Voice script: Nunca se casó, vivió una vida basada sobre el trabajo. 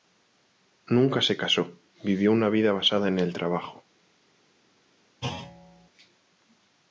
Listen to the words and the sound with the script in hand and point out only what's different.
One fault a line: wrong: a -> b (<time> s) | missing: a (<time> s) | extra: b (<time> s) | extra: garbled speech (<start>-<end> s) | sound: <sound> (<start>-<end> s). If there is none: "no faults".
wrong: sobre -> en (3.1 s)
sound: thud (5.2-5.9 s)